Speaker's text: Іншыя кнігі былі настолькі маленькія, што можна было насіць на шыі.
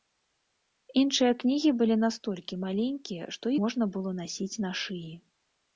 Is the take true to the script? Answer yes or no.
yes